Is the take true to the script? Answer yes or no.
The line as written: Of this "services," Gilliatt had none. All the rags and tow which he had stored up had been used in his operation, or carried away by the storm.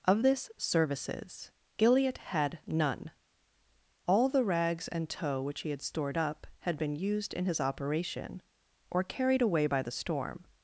yes